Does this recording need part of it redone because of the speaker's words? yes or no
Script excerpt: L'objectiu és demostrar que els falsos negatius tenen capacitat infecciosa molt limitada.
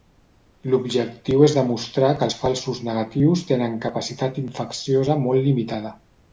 no